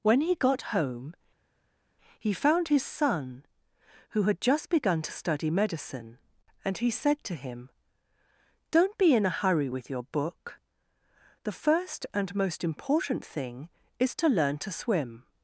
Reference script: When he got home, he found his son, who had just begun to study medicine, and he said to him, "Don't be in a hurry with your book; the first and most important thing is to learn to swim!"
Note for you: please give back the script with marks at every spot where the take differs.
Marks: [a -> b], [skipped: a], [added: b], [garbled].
When he got home, he found his son, who had just begun to study medicine, and he said to him, "Don't be in a hurry with your book; the first and most important thing is to learn to swim!"